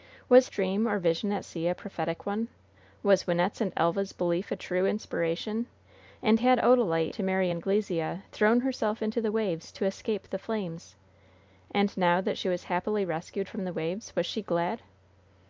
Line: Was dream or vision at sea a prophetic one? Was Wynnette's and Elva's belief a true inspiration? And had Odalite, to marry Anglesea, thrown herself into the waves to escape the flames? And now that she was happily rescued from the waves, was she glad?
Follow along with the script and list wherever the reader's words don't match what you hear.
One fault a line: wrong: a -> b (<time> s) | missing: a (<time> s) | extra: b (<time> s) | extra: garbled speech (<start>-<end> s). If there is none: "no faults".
no faults